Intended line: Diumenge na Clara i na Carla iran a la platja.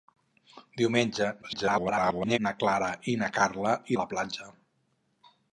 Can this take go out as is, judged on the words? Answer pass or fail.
fail